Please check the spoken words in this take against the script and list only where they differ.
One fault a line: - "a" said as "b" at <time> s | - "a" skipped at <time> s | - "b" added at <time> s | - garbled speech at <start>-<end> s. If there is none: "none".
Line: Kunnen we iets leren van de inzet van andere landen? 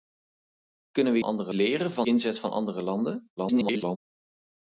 - "iets" said as "andere" at 1.2 s
- "de" skipped at 2.1 s
- garbled speech at 3.4-4.0 s